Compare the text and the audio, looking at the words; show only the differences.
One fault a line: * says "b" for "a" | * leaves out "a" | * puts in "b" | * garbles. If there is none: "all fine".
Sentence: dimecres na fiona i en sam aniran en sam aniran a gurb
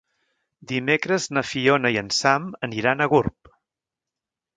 * leaves out "en sam aniran"